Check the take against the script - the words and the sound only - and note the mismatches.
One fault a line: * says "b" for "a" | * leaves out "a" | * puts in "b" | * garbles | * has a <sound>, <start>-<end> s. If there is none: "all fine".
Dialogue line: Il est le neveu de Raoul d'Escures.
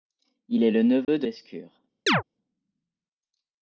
* has a dropout, 1.0-1.1 s
* leaves out "Raoul"
* has a chirp, 2.1-2.2 s